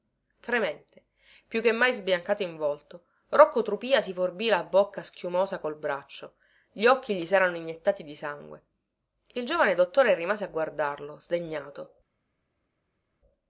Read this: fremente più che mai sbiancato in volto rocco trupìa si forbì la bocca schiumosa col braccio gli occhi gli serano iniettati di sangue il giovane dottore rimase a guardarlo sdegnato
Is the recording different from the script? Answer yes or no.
no